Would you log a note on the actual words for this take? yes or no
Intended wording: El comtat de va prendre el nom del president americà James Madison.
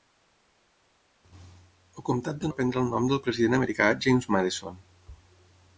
no